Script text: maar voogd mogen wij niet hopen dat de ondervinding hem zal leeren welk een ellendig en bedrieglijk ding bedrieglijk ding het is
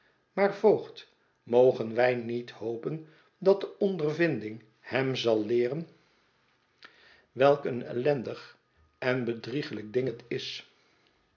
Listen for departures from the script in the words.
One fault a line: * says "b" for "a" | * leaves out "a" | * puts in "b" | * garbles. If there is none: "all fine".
* leaves out "bedrieglijk ding"